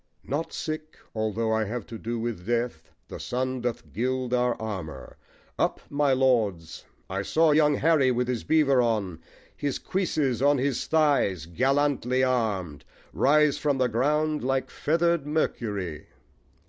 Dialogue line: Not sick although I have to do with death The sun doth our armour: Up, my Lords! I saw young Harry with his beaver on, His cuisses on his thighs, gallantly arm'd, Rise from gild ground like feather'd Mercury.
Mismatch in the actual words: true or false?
true